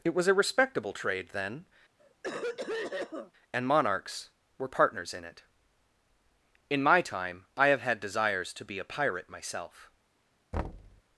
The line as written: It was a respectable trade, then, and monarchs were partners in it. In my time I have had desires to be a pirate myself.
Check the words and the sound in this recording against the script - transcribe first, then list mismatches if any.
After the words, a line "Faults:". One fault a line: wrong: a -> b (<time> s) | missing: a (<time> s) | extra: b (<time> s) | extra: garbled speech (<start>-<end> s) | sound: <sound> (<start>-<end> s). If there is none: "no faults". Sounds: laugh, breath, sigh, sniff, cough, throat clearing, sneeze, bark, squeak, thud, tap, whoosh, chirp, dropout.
It was a respectable trade, then, and monarchs were partners in it. In my time I have had desires to be a pirate myself.
Faults:
sound: cough (2.0-3.3 s)
sound: thud (10.5-11.0 s)